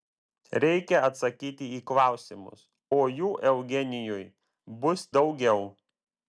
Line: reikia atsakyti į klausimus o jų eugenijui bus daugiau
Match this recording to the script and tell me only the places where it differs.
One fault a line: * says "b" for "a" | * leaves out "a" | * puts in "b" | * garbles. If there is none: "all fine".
all fine